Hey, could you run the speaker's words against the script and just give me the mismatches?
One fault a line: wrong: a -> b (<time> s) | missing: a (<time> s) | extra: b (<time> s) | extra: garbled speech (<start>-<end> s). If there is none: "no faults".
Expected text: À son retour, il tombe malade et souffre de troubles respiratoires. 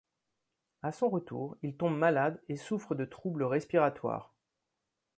no faults